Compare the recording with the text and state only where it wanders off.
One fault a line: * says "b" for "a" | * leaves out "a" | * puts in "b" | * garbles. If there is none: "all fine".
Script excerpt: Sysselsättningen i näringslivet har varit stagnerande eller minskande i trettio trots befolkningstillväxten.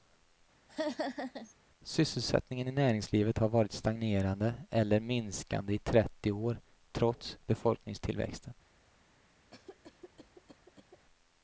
* puts in "år"